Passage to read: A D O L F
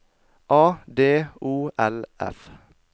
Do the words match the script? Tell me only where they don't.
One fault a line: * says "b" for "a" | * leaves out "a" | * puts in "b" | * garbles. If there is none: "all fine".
all fine